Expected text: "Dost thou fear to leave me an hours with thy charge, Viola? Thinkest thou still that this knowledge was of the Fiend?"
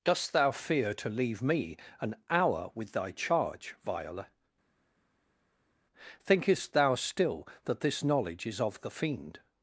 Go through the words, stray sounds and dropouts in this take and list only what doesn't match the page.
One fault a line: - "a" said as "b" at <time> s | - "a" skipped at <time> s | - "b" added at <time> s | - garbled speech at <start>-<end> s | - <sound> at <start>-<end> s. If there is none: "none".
- "hours" said as "hour" at 2.3 s
- "was" said as "is" at 8.5 s